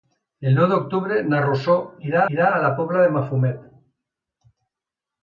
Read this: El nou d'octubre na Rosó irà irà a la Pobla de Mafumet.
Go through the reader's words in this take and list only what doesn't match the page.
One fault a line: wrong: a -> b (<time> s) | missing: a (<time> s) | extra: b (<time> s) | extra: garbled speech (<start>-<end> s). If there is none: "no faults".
no faults